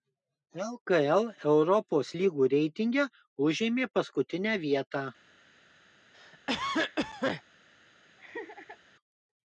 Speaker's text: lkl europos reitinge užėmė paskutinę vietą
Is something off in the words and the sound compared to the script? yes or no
yes